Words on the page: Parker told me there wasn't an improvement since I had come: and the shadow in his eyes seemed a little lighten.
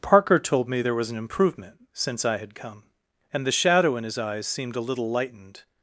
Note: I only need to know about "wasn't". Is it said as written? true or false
false